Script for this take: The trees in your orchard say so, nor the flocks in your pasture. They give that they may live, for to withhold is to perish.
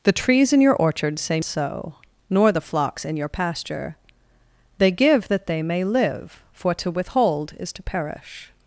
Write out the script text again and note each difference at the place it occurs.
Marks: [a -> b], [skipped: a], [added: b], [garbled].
The trees in your orchard say so, nor the flocks in your pasture. They give that they may live, for to withhold is to perish.